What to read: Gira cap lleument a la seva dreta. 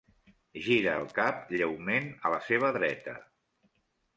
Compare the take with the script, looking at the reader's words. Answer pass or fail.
fail